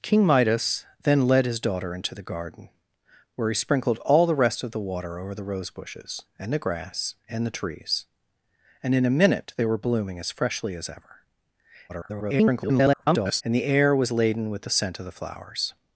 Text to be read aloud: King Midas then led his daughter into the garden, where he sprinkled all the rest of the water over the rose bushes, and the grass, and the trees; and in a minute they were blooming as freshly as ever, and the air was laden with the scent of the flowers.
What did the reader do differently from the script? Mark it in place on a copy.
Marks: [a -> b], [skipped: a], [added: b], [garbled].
King Midas then led his daughter into the garden, where he sprinkled all the rest of the water over the rose bushes, and the grass, and the trees; and in a minute they were blooming as freshly as ever, [garbled] and the air was laden with the scent of the flowers.